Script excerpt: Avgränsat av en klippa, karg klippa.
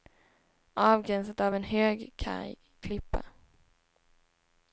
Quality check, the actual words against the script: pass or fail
fail